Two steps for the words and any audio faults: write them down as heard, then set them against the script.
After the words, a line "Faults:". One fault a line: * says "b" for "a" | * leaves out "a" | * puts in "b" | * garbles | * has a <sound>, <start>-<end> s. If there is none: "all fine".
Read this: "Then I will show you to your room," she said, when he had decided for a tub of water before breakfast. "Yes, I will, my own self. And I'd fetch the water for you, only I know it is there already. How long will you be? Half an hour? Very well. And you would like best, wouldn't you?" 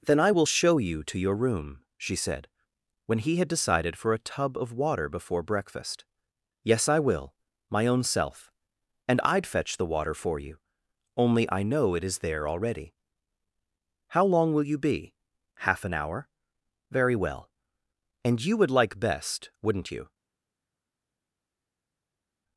"Then I will show you to your room," she said, when he had decided for a tub of water before breakfast. "Yes, I will, my own self. And I'd fetch the water for you, only I know it is there already. How long will you be? Half an hour? Very well. And you would like best, wouldn't you?"
Faults:
all fine